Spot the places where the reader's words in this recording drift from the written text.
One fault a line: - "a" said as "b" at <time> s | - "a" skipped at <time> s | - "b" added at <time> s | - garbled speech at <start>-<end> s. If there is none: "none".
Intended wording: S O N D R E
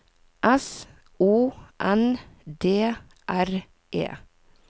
none